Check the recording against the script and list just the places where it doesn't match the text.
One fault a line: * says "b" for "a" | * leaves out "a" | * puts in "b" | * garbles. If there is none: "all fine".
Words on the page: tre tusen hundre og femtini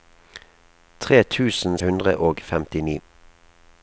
all fine